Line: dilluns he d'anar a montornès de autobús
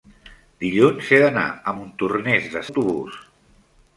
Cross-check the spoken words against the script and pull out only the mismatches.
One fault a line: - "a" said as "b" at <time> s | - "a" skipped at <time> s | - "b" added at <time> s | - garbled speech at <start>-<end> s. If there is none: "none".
none